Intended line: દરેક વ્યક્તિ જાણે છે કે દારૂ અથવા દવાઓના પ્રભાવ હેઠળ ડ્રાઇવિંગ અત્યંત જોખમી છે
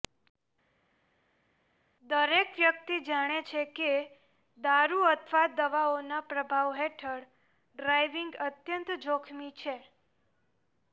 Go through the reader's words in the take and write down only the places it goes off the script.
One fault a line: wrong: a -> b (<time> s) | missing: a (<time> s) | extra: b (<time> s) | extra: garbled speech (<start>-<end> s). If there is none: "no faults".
no faults